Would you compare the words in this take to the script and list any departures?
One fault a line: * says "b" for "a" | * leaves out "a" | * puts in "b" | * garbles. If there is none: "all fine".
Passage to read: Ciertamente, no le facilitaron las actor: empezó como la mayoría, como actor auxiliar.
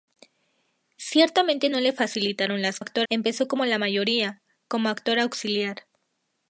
all fine